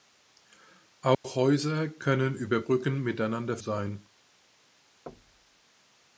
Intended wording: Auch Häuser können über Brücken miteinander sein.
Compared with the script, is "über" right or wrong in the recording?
right